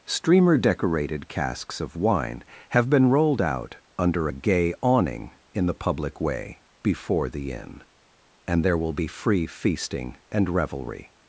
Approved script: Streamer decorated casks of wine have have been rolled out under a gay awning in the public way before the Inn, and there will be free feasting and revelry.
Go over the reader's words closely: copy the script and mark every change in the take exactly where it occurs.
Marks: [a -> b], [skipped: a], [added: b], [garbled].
Streamer decorated casks of wine have [skipped: have] been rolled out under a gay awning in the public way before the Inn, and there will be free feasting and revelry.